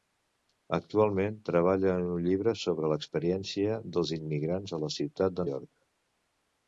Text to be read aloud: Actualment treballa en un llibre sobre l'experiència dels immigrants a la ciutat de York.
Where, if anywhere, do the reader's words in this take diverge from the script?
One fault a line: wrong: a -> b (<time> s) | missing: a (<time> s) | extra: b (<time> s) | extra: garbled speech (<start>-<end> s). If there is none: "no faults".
no faults